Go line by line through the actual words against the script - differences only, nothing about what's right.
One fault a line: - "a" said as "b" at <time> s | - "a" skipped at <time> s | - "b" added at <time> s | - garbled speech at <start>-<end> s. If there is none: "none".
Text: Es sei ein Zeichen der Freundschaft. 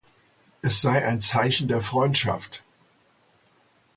none